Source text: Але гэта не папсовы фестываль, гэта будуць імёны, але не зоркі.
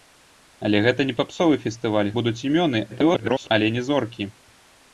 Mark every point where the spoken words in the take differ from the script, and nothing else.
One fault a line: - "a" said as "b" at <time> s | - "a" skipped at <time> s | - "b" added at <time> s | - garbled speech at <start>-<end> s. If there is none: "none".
- "гэта" skipped at 2.1 s
- garbled speech at 2.9-3.5 s